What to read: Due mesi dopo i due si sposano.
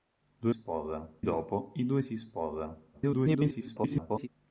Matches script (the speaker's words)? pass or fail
fail